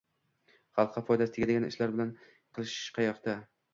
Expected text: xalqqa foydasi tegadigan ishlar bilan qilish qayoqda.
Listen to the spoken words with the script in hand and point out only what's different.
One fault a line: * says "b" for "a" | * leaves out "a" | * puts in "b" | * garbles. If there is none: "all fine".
all fine